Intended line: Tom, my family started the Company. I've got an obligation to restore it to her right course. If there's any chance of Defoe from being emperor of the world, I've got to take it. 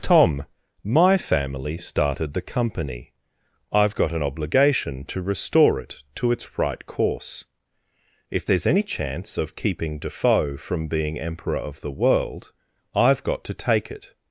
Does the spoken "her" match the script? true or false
false